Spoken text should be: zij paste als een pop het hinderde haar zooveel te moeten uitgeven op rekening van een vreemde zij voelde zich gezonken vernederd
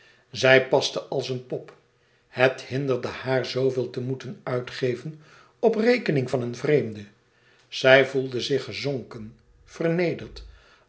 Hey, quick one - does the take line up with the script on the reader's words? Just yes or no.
yes